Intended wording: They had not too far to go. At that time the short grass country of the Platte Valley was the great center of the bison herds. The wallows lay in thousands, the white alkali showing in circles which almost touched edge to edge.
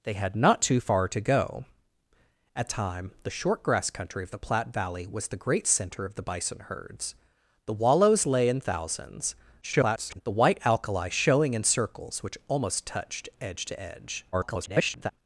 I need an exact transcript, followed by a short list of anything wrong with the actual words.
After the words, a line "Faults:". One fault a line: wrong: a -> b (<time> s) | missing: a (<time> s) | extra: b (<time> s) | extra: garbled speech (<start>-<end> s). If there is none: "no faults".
They had not too far to go. At time the short grass country of the Platte Valley was the great center of the bison herds. The wallows lay in thousands, [garbled] the white alkali showing in circles which almost touched edge to edge. [garbled]
Faults:
missing: that (2.7 s)
extra: garbled speech (9.6-10.2 s)
extra: garbled speech (14.3-15.1 s)